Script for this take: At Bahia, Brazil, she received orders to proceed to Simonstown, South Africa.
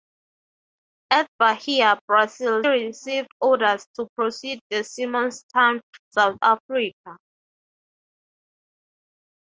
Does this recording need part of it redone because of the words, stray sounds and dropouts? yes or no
yes